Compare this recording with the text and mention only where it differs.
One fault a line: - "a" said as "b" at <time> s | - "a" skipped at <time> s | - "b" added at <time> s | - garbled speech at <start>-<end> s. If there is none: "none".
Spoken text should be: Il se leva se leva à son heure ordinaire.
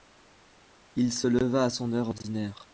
- "se leva" skipped at 1.7 s